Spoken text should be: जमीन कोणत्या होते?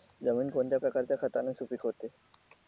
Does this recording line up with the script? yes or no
no